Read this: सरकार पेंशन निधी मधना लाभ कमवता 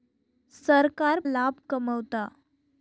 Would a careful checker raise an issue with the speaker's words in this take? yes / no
yes